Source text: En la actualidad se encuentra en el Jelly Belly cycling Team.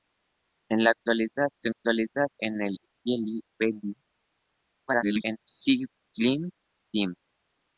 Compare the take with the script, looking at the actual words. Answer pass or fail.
fail